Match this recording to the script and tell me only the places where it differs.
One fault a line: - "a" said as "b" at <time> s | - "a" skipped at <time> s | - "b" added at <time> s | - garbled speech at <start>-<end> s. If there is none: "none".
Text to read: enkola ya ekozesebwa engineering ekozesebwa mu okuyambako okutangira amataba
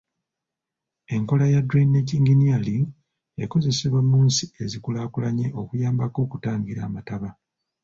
- "ekozesebwa" said as "drainage" at 1.7 s
- "nsi ezikulaakulanye" added at 4.3 s